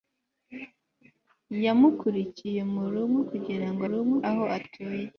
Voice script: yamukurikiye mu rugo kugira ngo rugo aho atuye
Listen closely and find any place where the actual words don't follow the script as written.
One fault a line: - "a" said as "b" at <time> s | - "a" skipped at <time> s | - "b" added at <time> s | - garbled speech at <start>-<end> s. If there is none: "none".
none